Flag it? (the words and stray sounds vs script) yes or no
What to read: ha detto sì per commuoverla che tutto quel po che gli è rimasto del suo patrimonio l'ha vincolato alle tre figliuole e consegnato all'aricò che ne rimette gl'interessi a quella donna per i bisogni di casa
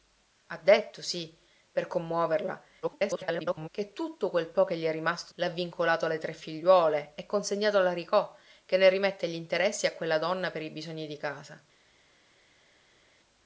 yes